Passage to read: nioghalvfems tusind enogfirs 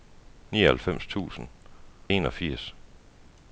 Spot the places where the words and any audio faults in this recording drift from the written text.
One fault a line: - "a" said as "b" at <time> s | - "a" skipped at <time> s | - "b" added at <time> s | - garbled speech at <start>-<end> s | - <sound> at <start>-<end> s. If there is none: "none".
none